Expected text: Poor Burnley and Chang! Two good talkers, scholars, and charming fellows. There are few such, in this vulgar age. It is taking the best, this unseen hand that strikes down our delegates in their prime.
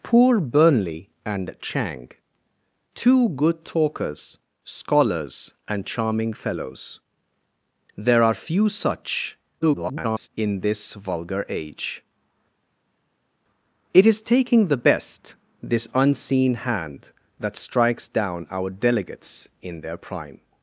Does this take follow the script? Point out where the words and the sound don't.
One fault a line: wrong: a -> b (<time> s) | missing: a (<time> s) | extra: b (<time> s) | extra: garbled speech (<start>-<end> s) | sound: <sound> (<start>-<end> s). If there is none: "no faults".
extra: garbled speech (9.6-10.3 s)